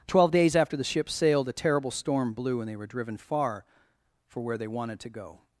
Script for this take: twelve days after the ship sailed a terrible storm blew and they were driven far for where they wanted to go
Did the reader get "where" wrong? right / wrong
right